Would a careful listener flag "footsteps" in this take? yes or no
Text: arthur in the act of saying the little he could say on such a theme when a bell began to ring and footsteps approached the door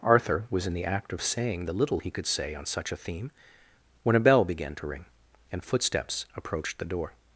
no